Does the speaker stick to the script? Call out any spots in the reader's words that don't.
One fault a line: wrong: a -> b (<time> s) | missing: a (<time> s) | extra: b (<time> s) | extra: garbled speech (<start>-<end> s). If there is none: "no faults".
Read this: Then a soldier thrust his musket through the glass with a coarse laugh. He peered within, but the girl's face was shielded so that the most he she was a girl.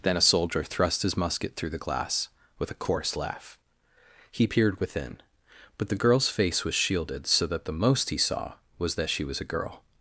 extra: saw was that (8.2 s)